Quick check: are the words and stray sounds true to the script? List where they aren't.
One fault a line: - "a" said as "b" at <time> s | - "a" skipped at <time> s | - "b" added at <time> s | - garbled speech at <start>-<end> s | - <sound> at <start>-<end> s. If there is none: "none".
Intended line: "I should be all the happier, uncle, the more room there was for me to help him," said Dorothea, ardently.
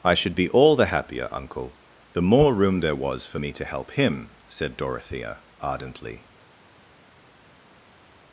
none